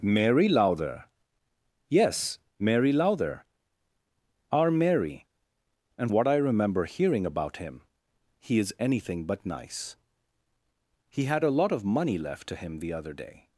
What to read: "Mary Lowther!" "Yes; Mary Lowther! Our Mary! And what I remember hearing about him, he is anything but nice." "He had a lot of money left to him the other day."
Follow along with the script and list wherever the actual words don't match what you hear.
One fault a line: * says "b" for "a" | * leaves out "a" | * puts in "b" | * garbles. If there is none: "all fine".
all fine